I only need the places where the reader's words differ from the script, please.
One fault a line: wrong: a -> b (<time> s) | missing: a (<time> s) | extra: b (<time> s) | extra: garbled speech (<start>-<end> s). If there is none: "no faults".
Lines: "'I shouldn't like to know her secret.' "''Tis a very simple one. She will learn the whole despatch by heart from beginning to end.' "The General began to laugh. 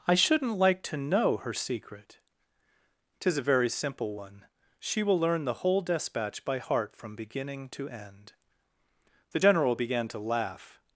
no faults